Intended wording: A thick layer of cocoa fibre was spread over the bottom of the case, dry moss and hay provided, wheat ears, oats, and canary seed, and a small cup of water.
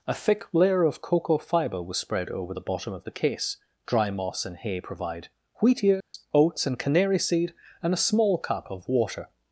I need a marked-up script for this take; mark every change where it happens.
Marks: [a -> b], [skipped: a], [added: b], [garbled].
A thick layer of cocoa fibre was spread over the bottom of the case, dry moss and hay [provided, -> provide] wheat ears, oats, and canary seed, and a small cup of water.